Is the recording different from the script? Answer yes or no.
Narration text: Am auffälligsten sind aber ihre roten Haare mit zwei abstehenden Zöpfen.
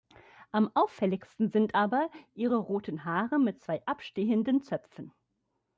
no